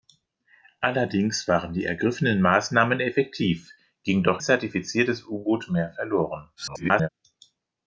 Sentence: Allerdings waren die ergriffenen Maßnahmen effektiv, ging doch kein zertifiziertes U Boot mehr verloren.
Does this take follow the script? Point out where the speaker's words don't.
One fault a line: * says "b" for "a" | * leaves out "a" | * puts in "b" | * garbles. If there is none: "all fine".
* leaves out "kein"
* garbles